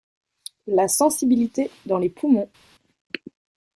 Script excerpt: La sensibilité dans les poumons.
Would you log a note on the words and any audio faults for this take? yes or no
no